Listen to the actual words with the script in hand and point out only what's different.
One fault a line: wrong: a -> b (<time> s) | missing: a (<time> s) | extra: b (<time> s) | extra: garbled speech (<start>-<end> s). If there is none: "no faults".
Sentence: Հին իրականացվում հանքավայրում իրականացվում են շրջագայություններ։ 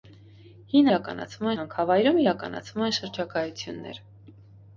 no faults